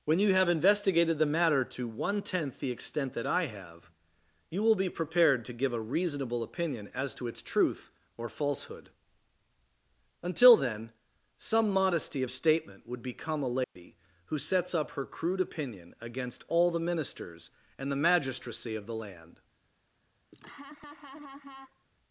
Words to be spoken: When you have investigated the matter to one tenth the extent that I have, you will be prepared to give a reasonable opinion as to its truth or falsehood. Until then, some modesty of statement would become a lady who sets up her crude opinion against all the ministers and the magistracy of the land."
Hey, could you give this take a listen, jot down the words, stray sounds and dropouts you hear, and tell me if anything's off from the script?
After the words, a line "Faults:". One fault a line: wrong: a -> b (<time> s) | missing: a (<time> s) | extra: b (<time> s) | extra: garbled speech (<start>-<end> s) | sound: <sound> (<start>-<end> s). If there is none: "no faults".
When you have investigated the matter to one tenth the extent that I have, you will be prepared to give a reasonable opinion as to its truth or falsehood. Until then, some modesty of statement would become a lady who sets up her crude opinion against all the ministers and the magistracy of the land."
Faults:
sound: dropout (13.6-13.8 s)
sound: laugh (20.3-21.8 s)